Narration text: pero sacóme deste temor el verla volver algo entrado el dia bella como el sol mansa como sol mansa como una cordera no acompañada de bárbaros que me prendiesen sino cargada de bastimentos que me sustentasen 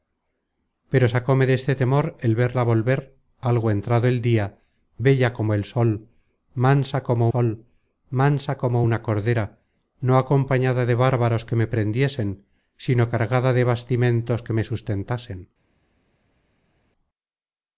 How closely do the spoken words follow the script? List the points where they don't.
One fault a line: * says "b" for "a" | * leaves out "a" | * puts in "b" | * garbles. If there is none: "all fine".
all fine